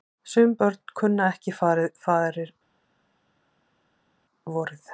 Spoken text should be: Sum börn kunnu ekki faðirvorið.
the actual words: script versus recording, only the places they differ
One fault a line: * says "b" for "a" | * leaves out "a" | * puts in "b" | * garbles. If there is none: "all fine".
all fine